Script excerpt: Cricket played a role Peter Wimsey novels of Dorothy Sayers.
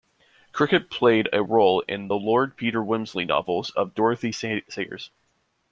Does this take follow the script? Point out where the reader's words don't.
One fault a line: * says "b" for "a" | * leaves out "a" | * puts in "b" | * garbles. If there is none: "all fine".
* puts in "in the Lord"